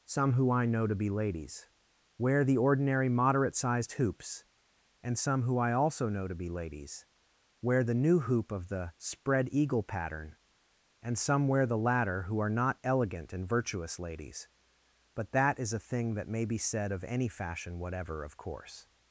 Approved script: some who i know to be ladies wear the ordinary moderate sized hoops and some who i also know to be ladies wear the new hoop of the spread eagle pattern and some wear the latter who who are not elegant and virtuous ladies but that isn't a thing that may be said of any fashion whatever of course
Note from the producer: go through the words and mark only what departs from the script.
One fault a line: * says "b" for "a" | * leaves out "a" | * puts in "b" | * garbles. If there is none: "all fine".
* leaves out "who"
* says "is" for "isn't"